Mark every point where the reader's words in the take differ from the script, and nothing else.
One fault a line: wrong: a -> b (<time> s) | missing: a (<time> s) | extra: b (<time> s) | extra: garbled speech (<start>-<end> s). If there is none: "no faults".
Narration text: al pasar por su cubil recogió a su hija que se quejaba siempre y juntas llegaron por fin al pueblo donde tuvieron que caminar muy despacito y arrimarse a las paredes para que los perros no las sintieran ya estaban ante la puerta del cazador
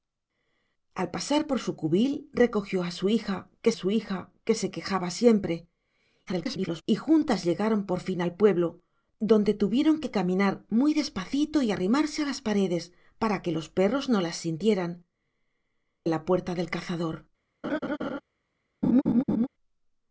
extra: su hija que (3.7 s)
extra: garbled speech (6.3-6.8 s)
missing: ya estaban ante (15.1 s)